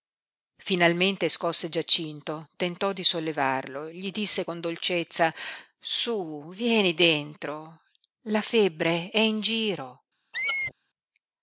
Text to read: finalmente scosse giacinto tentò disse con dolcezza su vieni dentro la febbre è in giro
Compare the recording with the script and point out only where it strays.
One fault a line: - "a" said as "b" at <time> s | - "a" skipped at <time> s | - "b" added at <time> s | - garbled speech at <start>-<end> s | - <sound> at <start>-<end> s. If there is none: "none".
- "di sollevarlo gli" added at 2.9 s
- squeak at 10.3-10.7 s